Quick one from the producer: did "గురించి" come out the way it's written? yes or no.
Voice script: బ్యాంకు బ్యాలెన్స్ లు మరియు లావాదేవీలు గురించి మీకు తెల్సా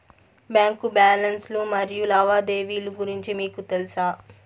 yes